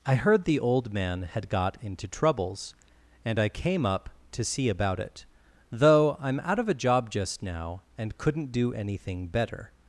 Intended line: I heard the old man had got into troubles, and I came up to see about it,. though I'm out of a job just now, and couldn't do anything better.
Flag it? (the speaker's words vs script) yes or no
no